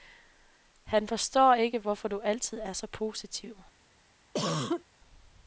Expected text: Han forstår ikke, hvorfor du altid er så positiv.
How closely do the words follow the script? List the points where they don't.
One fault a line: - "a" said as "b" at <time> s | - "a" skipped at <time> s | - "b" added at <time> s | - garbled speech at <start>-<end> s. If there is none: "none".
none